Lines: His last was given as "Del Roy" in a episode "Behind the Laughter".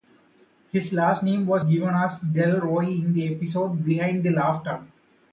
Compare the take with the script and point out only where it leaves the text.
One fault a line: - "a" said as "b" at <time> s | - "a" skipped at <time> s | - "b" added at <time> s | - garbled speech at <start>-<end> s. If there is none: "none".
- "name" added at 1.2 s
- "a" said as "the" at 3.1 s